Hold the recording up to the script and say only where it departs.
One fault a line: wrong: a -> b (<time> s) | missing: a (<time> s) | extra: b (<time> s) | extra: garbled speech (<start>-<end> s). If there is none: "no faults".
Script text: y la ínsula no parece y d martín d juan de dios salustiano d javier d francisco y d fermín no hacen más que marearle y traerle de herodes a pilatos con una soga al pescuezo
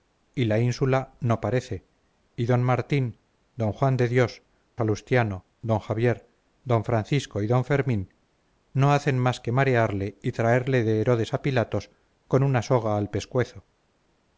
no faults